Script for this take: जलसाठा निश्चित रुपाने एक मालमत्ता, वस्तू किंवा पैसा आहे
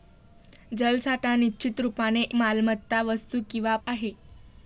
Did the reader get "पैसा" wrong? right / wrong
wrong